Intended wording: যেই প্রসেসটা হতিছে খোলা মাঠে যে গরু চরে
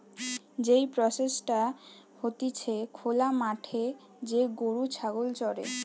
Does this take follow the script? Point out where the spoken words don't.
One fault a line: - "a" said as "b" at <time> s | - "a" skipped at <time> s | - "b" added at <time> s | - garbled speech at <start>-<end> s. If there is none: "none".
- "ছাগল" added at 4.9 s